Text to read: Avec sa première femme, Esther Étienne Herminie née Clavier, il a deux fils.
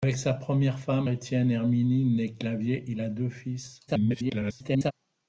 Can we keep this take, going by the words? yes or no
no